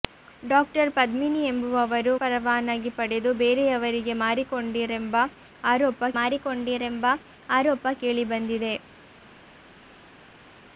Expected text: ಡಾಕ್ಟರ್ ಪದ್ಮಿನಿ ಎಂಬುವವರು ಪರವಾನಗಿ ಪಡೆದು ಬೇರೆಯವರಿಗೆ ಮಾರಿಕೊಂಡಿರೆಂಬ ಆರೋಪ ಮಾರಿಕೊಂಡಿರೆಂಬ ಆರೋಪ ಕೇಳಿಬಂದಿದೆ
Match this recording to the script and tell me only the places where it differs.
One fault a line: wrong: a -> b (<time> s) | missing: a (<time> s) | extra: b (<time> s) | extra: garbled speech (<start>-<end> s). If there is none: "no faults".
no faults